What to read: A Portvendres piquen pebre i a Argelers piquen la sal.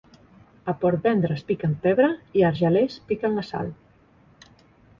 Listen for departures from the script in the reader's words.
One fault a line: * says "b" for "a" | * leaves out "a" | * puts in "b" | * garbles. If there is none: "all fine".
all fine